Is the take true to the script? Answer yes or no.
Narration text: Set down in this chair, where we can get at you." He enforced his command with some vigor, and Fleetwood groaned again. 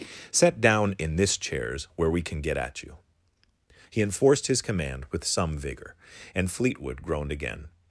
no